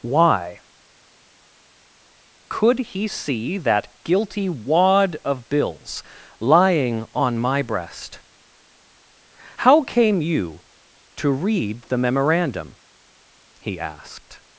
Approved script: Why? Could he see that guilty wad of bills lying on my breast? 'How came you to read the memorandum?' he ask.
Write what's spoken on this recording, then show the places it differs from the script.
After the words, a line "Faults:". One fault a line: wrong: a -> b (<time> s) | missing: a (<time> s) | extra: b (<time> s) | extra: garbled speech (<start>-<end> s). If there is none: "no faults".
Why? Could he see that guilty wad of bills lying on my breast? 'How came you to read the memorandum?' he asked.
Faults:
wrong: ask -> asked (13.8 s)